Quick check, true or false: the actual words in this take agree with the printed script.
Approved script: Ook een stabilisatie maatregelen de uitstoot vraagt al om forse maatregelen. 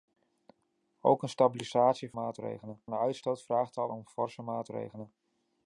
true